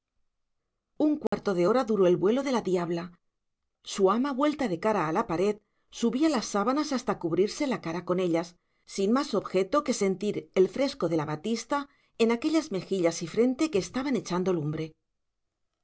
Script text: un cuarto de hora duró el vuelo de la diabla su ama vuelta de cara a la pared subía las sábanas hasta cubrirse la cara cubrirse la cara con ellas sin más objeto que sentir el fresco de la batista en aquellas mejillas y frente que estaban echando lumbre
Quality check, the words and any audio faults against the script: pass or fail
fail